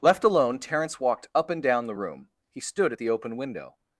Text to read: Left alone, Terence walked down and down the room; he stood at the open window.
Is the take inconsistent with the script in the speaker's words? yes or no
yes